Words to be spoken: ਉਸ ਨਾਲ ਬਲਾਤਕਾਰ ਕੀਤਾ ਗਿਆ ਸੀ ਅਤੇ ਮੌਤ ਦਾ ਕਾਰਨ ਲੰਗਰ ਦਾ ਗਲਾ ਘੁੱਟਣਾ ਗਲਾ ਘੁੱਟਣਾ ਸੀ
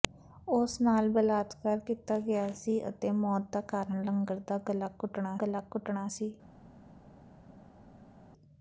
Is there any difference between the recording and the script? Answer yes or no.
no